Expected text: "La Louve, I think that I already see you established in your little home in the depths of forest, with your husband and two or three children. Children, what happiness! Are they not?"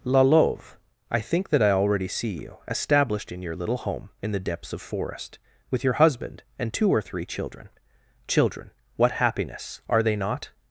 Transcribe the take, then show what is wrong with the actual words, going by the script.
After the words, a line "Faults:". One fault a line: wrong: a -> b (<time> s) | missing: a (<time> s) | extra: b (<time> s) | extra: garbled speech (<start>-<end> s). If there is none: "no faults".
"La Louve, I think that I already see you established in your little home in the depths of forest, with your husband and two or three children. Children, what happiness! Are they not?"
Faults:
no faults